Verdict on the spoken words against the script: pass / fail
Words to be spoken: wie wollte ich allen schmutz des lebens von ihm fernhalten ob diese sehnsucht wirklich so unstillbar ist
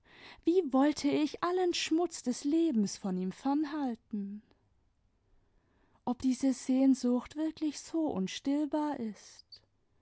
pass